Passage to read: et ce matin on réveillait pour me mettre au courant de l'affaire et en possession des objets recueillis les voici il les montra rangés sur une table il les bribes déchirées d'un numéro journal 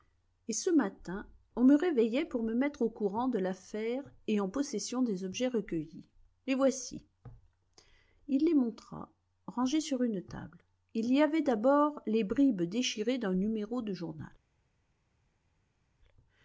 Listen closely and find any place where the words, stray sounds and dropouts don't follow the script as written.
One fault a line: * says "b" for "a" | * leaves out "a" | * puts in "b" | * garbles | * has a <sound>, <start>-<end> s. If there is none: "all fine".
* puts in "me"
* puts in "y avait d'abord"
* puts in "de"